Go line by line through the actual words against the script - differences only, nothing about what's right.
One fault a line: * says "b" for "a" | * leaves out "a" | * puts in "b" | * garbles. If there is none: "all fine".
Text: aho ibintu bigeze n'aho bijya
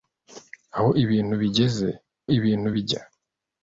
* says "ibintu" for "n'aho"